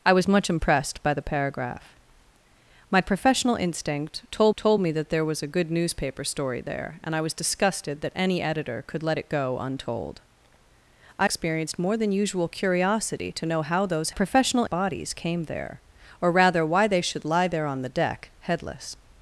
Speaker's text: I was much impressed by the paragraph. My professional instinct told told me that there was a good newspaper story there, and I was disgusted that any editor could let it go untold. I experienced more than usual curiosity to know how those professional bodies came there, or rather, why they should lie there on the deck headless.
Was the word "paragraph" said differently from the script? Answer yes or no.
no